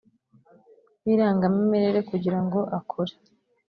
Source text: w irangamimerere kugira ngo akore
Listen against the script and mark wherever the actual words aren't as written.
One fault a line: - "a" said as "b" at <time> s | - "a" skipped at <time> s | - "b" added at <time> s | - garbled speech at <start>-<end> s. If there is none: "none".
none